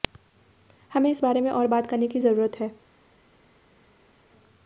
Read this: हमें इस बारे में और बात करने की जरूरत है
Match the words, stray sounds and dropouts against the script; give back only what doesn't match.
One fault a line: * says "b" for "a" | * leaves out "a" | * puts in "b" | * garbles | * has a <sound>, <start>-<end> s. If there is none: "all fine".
all fine